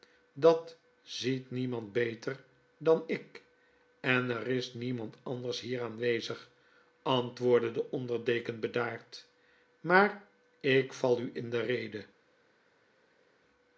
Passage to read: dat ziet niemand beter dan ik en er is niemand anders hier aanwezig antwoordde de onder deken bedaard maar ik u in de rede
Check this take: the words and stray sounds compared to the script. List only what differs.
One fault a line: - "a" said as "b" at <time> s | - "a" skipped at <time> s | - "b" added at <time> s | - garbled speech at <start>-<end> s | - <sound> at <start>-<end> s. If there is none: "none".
- "val" added at 10.9 s